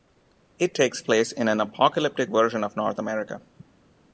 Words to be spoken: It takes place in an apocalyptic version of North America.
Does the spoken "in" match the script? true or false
true